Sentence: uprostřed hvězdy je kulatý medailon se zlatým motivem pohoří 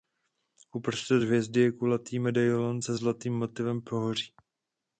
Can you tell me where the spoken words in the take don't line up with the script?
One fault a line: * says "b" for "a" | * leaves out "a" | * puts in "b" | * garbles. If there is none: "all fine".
all fine